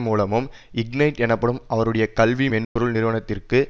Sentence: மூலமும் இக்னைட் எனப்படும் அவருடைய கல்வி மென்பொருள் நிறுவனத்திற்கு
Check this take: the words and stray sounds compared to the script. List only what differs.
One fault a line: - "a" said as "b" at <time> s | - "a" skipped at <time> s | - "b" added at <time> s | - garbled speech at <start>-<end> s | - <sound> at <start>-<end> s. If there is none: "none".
- dropout at 2.6-2.8 s